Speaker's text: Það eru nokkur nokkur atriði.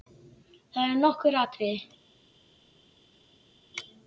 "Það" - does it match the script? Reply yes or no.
yes